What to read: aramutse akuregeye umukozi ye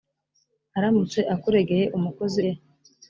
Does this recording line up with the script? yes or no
yes